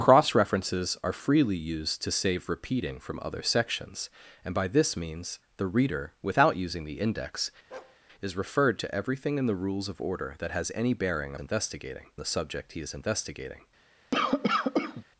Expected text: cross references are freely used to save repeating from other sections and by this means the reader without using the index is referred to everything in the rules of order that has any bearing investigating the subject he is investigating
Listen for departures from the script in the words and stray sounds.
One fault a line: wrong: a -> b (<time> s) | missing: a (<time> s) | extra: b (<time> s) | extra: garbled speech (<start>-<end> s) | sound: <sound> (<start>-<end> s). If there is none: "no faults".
sound: bark (7.7-8.0 s)
sound: cough (14.1-15.0 s)